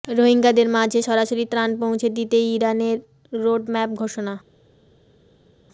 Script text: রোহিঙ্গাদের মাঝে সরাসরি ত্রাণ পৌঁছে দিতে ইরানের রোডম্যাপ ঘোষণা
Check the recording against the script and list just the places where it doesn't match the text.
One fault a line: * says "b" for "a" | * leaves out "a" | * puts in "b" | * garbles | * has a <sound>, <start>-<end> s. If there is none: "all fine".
all fine